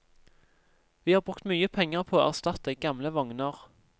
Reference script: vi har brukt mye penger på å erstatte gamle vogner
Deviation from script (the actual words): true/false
false